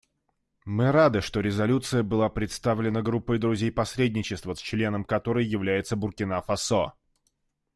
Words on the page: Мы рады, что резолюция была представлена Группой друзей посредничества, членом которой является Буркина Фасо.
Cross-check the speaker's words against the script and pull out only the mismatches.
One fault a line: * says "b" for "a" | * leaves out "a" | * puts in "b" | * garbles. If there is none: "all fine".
all fine